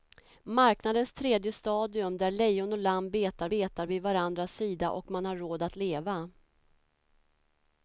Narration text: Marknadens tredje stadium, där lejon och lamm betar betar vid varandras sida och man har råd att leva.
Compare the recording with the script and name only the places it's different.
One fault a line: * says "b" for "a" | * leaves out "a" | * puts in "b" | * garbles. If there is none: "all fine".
all fine